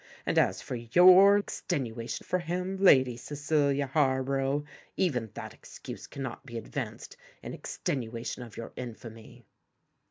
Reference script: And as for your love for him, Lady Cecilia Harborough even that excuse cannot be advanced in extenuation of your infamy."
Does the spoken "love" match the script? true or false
false